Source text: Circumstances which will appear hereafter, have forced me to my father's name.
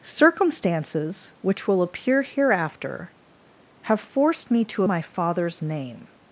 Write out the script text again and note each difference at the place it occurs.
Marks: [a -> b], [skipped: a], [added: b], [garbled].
Circumstances which will appear hereafter, have forced me to my father's name.